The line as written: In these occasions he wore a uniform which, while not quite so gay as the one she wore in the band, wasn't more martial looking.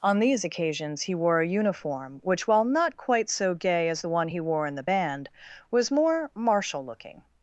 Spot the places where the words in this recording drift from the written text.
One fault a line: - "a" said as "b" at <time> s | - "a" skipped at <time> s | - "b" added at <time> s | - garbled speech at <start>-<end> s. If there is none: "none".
- "In" said as "On" at 0.0 s
- "she" said as "he" at 4.3 s
- "wasn't" said as "was" at 5.7 s